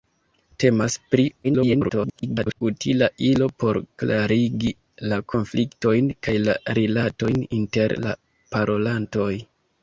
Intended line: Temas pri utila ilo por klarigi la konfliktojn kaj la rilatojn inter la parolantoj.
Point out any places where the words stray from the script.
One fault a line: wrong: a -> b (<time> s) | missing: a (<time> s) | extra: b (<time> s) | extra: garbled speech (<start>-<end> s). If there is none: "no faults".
extra: garbled speech (1.4-2.6 s)